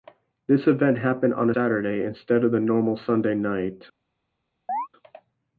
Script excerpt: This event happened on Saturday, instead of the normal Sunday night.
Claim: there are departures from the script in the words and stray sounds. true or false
true